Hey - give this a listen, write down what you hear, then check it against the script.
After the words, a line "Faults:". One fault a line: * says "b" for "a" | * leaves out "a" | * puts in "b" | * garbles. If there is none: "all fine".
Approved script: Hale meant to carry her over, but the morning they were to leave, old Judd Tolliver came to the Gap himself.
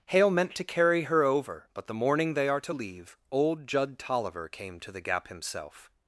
Hale meant to carry her over, but the morning they are to leave, old Judd Tolliver came to the Gap himself.
Faults:
* says "are" for "were"